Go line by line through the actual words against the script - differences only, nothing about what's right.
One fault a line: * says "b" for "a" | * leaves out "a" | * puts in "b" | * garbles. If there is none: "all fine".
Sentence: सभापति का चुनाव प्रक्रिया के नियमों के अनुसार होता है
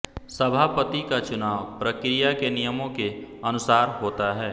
all fine